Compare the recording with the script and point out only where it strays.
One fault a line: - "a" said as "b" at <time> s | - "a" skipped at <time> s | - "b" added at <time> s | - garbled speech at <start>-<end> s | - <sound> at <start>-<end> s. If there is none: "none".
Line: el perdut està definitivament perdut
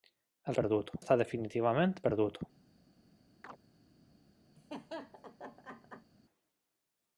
- chirp at 3.4-3.6 s
- laugh at 4.6-6.1 s